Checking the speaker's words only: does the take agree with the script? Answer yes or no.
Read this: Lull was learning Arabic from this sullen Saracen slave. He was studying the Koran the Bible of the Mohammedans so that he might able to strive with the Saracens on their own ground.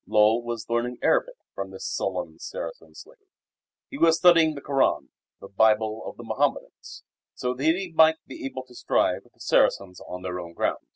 no